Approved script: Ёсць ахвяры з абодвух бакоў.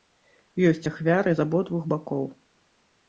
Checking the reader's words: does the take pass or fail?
pass